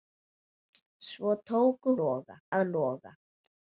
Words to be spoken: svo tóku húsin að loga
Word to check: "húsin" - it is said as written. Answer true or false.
false